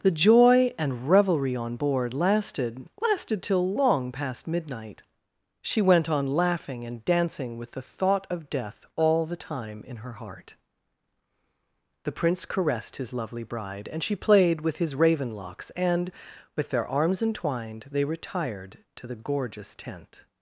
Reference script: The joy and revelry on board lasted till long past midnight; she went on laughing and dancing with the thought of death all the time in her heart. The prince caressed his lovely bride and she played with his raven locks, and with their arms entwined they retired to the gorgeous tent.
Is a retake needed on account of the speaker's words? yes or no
yes